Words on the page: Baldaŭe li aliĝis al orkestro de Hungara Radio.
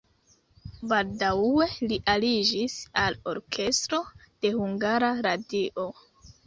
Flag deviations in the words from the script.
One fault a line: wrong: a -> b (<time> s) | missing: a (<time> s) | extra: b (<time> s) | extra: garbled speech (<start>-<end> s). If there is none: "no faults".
no faults